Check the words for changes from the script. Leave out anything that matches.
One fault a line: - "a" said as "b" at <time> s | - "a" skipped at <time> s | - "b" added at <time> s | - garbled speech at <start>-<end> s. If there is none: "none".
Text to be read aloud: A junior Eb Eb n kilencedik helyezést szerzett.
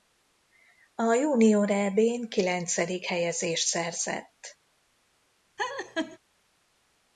- "Eb" skipped at 2.0 s